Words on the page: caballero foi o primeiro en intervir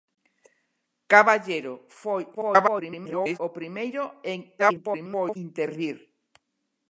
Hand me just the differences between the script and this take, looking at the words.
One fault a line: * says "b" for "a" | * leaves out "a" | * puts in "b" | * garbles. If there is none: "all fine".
* garbles
* garbles